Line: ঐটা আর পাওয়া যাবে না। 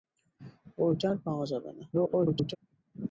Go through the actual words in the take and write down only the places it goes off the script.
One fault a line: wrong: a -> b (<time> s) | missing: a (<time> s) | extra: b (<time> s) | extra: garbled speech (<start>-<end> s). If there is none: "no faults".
extra: garbled speech (1.9-2.6 s)